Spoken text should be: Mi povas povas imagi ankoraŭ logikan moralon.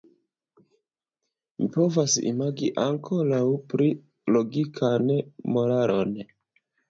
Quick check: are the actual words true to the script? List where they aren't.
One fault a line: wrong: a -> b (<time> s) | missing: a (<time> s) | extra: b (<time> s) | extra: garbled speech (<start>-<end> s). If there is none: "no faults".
missing: povas (2.1 s)
extra: pli (3.7 s)